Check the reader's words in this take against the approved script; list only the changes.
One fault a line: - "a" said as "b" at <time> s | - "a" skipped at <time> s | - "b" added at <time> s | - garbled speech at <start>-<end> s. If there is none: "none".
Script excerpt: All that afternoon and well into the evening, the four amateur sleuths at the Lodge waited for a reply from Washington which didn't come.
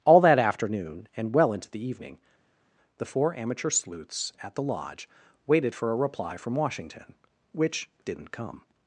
none